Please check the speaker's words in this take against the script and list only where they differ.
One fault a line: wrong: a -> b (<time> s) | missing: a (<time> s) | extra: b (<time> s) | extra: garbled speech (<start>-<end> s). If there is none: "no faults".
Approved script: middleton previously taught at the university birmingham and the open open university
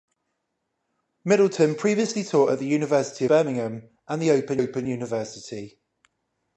no faults